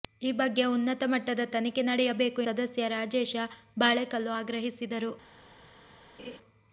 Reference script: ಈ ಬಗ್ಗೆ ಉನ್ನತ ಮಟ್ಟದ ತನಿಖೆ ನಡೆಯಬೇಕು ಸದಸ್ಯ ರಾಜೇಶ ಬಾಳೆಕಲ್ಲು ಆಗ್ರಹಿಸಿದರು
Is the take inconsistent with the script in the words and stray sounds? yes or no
yes